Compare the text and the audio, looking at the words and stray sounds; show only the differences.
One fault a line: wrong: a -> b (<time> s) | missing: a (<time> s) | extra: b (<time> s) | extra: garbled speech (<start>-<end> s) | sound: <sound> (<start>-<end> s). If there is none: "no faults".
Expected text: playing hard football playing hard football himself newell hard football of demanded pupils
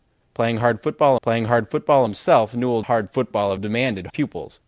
no faults